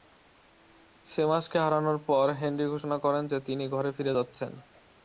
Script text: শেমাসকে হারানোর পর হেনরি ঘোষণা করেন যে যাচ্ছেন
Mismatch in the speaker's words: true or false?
true